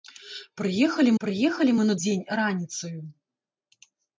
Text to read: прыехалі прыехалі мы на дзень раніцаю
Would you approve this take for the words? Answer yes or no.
yes